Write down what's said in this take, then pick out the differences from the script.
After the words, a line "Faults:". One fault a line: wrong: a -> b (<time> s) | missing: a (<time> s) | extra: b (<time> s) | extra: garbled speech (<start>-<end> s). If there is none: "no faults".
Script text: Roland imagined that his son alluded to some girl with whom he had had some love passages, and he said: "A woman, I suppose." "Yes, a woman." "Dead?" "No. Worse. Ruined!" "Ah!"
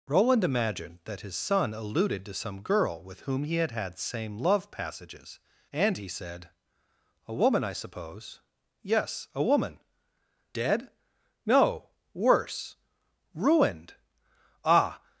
Roland imagined that his son alluded to some girl with whom he had had same love passages, and he said: "A woman, I suppose." "Yes, a woman." "Dead?" "No. Worse. Ruined!" "Ah!"
Faults:
wrong: some -> same (4.0 s)